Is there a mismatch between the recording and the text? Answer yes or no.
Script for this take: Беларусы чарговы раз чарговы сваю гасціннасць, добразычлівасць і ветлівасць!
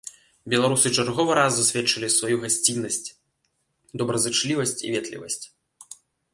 yes